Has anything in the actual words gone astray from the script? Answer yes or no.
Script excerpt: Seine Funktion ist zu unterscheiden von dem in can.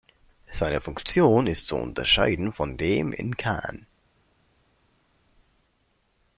no